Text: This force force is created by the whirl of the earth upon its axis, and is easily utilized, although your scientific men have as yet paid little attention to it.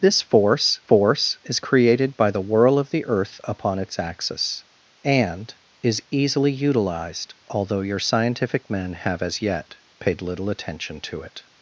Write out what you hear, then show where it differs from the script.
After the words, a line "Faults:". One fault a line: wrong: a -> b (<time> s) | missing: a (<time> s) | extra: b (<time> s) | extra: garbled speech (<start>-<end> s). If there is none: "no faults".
This force force is created by the whirl of the earth upon its axis, and is easily utilized, although your scientific men have as yet paid little attention to it.
Faults:
no faults